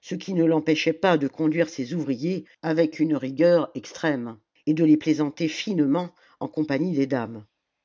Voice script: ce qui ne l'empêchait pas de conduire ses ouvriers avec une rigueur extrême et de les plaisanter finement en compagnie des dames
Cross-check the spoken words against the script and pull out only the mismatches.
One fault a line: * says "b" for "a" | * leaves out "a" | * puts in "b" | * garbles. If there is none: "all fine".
all fine